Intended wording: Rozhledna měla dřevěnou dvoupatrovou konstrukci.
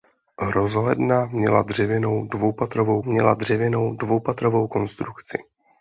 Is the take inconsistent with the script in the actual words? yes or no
yes